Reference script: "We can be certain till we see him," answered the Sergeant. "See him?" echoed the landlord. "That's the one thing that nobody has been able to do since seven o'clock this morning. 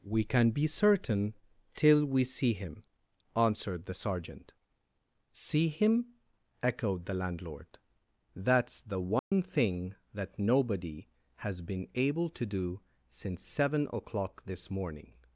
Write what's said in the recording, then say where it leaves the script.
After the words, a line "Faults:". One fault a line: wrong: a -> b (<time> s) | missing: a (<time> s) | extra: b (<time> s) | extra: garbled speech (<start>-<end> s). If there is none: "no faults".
"We can be certain till we see him," answered the Sergeant. "See him?" echoed the landlord. "That's the one thing that nobody has been able to do since seven o'clock this morning.
Faults:
no faults